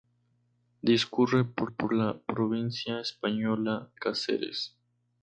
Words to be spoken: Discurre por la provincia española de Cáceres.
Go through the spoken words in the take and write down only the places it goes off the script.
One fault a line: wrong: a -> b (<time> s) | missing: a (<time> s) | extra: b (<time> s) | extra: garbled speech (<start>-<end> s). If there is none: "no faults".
extra: por (1.7 s)
missing: de (3.9 s)